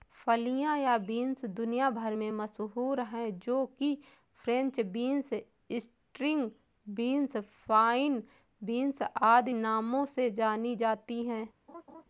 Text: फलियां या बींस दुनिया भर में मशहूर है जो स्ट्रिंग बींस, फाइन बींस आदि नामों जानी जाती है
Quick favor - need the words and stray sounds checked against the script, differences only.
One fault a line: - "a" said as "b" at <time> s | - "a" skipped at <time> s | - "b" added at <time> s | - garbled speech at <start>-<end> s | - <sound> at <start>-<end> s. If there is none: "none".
- "कि फ्रेंच बींस" added at 3.8 s
- "से" added at 10.1 s
- laugh at 11.7-12.0 s